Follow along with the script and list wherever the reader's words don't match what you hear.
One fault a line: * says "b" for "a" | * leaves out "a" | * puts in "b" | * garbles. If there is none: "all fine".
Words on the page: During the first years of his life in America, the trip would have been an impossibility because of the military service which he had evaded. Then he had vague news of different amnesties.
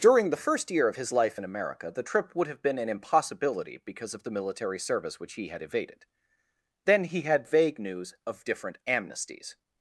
* says "year" for "years"